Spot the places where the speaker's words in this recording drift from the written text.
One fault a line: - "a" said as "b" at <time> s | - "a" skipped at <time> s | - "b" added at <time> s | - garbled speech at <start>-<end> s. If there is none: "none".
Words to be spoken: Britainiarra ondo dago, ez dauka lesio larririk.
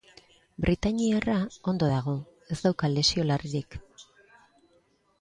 none